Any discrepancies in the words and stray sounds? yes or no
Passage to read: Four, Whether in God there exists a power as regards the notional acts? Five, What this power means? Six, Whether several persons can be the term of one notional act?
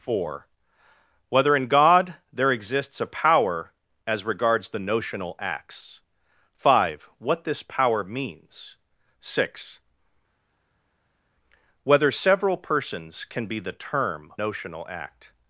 yes